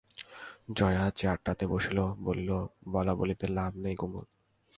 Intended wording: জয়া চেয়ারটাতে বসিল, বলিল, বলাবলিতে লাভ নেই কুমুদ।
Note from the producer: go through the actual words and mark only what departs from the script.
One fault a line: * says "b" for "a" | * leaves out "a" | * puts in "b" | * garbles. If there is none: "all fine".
all fine